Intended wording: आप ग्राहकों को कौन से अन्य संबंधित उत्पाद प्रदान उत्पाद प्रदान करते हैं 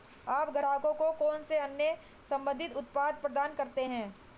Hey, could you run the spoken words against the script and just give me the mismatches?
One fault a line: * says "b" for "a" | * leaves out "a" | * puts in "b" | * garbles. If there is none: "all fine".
* leaves out "उत्पाद प्रदान"